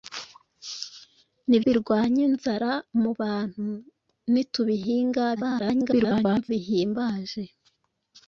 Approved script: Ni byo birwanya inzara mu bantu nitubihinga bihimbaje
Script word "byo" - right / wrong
wrong